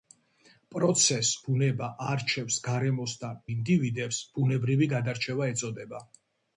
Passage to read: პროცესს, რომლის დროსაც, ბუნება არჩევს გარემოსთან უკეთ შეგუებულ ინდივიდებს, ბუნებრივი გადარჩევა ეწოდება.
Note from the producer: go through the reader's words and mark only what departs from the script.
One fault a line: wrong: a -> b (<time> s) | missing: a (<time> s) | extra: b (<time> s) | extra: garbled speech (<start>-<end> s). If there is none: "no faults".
missing: რომლის დროსაც (1.3 s)
missing: უკეთ შეგუებულ (3.4 s)